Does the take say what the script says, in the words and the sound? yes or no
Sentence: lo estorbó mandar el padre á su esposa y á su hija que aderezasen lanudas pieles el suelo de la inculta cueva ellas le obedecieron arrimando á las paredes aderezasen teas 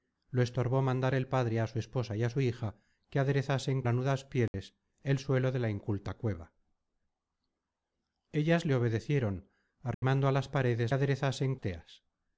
no